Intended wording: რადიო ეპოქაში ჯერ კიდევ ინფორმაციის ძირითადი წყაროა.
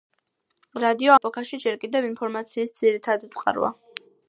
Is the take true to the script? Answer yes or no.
yes